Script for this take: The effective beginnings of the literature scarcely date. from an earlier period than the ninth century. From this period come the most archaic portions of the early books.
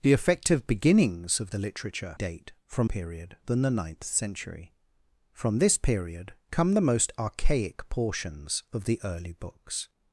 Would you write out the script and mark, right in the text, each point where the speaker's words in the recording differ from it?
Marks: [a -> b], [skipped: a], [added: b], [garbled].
The effective beginnings of the literature [skipped: scarcely] date. from [skipped: an earlier] period than the ninth century. From this period come the most archaic portions of the early books.